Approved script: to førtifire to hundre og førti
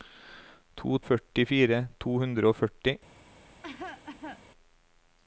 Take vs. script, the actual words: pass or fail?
pass